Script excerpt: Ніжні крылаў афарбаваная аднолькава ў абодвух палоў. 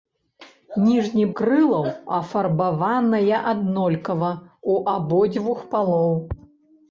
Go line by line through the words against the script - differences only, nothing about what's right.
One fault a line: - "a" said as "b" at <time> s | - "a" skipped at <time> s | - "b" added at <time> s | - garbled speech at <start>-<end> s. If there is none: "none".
none